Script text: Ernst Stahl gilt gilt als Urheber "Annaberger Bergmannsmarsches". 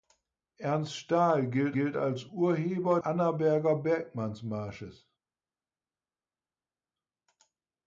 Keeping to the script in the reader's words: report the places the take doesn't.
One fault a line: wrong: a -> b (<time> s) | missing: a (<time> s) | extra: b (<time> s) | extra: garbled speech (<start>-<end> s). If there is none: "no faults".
no faults